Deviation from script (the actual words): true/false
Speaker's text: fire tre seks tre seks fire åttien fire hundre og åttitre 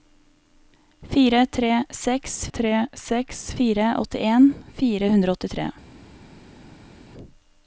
false